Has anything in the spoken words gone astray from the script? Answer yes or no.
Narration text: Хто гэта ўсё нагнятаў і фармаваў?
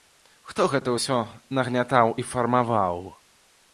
no